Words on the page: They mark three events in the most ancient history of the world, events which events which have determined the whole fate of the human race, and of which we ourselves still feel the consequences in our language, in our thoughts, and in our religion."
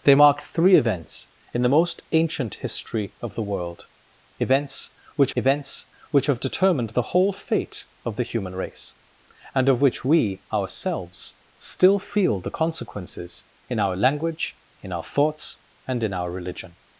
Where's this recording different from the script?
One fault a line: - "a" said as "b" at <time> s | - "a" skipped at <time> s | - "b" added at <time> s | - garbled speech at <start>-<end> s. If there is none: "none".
none